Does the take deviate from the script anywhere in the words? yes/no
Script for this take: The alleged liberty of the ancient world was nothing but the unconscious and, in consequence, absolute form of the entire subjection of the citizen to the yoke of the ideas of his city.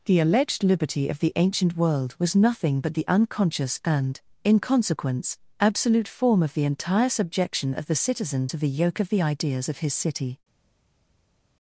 no